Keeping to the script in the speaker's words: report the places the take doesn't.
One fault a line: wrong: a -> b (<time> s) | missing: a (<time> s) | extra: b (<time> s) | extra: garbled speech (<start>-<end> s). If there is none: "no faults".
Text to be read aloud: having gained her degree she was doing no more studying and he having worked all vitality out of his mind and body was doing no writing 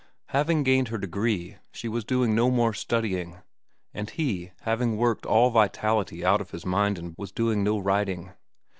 missing: body (7.1 s)